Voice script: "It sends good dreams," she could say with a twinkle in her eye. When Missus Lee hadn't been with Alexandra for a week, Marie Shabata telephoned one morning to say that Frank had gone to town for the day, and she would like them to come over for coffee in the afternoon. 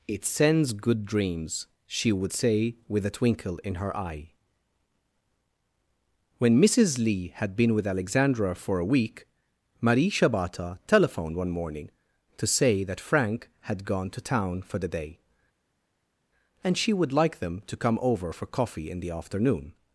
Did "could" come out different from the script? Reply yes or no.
yes